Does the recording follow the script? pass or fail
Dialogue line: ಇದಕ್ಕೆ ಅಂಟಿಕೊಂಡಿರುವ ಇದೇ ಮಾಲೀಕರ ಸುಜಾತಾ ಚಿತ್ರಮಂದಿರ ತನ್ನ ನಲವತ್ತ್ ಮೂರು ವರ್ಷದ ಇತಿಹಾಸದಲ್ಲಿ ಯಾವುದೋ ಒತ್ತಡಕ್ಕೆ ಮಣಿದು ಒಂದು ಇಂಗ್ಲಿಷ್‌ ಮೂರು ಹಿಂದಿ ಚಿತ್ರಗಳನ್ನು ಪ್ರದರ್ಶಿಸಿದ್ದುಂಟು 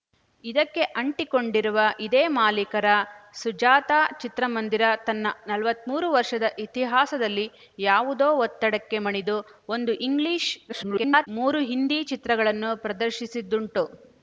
fail